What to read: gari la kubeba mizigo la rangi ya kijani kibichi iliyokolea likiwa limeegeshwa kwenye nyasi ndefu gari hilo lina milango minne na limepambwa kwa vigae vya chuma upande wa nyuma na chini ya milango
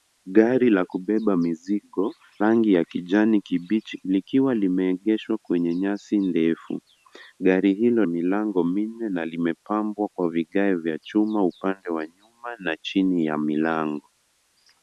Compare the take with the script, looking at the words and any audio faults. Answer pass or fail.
fail